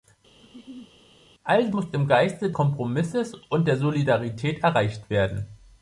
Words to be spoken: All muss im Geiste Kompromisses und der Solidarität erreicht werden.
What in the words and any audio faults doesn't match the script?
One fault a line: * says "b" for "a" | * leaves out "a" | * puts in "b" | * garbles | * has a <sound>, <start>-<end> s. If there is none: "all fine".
* has a laugh, 0.4-0.9 s